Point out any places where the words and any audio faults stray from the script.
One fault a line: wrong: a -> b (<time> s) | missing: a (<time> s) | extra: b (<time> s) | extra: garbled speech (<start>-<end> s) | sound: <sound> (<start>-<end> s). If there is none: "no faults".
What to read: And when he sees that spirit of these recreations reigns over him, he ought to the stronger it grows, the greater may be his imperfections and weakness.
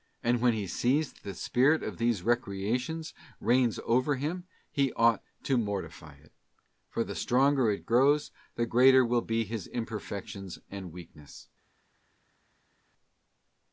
extra: the (1.2 s)
extra: mortify it for (5.6 s)
wrong: may -> will (9.1 s)